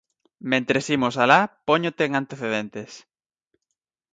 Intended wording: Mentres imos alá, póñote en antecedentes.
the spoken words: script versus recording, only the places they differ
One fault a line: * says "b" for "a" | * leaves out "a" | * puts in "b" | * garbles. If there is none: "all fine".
all fine